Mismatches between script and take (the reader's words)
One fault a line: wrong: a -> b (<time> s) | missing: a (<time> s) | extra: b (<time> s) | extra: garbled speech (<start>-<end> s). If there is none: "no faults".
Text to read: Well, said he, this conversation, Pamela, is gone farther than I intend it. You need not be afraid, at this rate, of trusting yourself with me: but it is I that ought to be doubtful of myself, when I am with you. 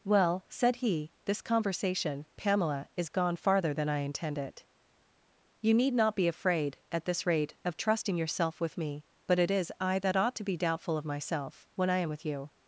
no faults